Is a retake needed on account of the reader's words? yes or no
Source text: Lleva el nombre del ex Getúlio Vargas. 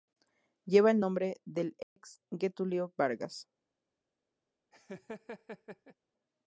no